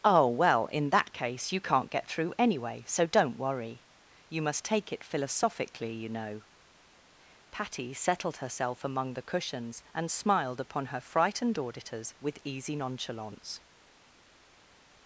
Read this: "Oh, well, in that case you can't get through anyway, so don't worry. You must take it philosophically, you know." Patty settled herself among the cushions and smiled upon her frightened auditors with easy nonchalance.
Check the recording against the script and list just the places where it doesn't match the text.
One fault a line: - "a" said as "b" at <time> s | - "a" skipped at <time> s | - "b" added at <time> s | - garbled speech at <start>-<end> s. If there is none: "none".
none